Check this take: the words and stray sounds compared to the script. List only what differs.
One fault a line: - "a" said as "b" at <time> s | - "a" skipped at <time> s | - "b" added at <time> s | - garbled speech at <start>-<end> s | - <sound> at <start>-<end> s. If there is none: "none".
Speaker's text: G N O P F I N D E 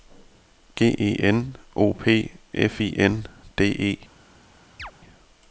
- "E" added at 1.0 s
- chirp at 4.8-4.9 s